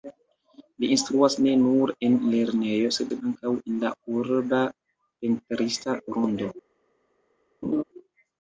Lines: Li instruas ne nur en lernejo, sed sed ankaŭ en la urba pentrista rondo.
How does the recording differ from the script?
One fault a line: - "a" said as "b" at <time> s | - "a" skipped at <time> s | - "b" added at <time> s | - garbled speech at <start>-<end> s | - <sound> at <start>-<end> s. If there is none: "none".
- laugh at 7.6-7.8 s